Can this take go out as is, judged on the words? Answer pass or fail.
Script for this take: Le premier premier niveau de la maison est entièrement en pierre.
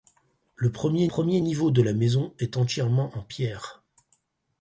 pass